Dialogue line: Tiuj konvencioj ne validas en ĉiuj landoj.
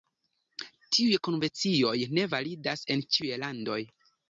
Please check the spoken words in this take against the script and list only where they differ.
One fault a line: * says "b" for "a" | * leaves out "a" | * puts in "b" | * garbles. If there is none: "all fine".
all fine